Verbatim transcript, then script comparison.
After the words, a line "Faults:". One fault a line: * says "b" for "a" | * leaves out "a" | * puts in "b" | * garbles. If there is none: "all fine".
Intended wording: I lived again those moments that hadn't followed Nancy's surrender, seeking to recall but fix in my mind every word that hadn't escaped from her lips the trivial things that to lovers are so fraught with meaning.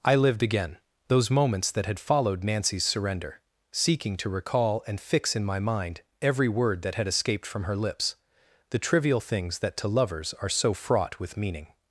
I lived again those moments that had followed Nancy's surrender, seeking to recall and fix in my mind every word that had escaped from her lips the trivial things that to lovers are so fraught with meaning.
Faults:
* says "had" for "hadn't"
* says "and" for "but"
* says "had" for "hadn't"